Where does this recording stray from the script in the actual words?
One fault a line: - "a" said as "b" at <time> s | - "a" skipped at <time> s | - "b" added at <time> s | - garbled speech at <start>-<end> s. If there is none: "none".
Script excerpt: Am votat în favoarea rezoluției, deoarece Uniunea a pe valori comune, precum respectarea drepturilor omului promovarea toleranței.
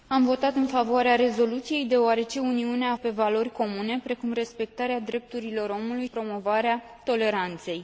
none